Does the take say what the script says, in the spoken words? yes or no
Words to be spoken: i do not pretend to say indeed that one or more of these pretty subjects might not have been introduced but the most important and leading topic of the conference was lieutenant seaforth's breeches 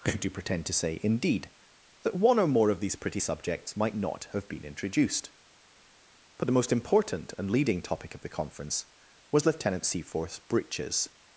no